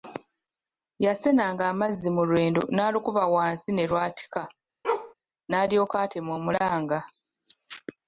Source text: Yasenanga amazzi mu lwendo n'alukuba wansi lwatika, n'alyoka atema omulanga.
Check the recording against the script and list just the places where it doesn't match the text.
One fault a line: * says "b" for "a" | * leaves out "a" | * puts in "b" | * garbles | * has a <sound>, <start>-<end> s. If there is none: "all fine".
* puts in "ne"
* has a bark, 4.8-5.1 s